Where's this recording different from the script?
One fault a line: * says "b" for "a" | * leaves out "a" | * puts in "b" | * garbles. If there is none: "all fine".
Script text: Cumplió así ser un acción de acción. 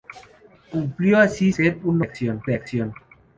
all fine